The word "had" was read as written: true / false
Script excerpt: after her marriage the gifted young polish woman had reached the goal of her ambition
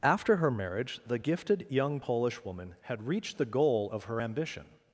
true